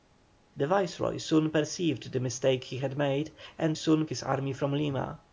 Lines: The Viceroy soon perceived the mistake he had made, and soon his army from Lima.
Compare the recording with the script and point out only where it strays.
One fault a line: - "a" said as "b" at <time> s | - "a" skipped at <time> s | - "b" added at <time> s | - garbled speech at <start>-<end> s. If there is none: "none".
none